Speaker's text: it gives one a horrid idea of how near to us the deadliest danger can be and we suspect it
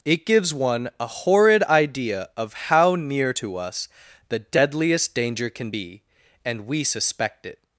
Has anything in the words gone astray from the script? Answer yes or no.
no